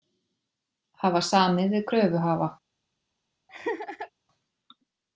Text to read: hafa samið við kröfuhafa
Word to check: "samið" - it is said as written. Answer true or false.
true